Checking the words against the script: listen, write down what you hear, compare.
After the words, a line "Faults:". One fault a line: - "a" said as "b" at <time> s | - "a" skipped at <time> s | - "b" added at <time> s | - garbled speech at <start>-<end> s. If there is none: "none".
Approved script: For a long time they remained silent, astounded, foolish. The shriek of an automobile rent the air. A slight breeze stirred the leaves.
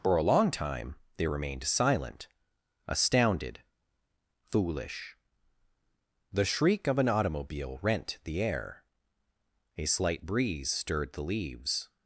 For a long time they remained silent, astounded, foolish. The shriek of an automobile rent the air. A slight breeze stirred the leaves.
Faults:
none